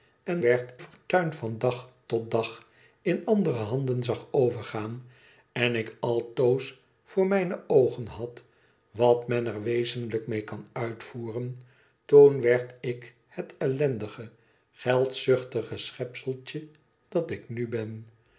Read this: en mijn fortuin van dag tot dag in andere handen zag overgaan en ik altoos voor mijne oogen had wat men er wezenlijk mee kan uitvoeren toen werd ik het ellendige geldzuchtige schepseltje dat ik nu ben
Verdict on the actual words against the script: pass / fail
fail